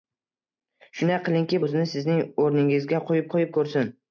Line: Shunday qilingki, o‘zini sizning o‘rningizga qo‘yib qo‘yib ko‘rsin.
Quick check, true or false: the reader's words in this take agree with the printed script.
true